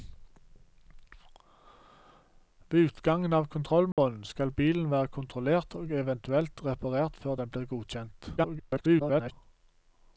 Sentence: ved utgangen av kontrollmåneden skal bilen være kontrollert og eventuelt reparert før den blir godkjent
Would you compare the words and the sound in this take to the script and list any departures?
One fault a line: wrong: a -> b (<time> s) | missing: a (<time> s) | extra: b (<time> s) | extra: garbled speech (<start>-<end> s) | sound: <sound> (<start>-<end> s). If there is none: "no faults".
sound: dropout (3.9-4.0 s)
extra: garbled speech (8.4-9.3 s)